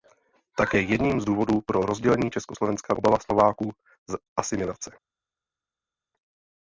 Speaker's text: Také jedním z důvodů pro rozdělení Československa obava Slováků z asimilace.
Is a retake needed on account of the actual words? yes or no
no